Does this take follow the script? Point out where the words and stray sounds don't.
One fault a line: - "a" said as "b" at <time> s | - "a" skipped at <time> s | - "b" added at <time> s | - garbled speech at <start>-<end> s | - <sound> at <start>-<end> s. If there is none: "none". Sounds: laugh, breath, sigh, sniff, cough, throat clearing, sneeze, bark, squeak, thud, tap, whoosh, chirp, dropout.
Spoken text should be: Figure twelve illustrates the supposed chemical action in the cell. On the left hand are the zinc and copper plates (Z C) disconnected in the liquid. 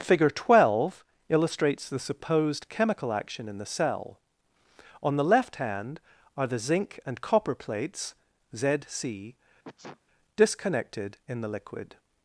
- sneeze at 9.6-10.0 s